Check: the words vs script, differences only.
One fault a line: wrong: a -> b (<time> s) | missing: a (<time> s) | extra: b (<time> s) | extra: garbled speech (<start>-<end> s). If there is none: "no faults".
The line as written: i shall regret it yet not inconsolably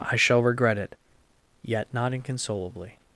no faults